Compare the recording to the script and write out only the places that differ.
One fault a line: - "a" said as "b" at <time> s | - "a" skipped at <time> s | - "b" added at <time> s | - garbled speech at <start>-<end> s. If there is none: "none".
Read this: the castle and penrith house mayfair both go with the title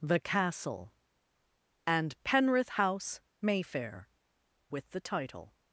- "both go" skipped at 4.1 s